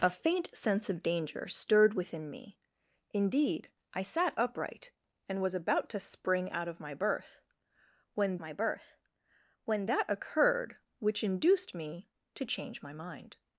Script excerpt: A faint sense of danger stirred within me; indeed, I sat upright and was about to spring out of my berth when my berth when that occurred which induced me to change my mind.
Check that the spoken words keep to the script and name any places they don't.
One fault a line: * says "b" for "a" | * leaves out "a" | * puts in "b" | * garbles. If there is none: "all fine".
all fine